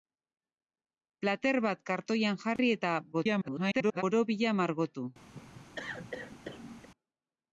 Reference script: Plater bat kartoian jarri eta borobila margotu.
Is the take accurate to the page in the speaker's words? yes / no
no